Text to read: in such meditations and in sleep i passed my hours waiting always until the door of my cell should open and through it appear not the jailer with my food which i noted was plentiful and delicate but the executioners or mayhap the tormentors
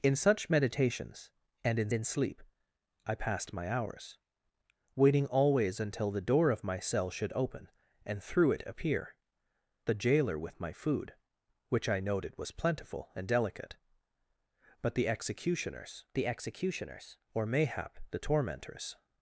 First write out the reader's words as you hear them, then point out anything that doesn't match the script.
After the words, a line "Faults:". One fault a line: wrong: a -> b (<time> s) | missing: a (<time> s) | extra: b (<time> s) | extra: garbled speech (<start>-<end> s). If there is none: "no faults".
in such meditations and in in sleep i passed my hours waiting always until the door of my cell should open and through it appear the jailer with my food which i noted was plentiful and delicate but the executioners the executioners or mayhap the tormentors
Faults:
extra: in (1.9 s)
missing: not (9.2 s)
extra: the executioners (16.1 s)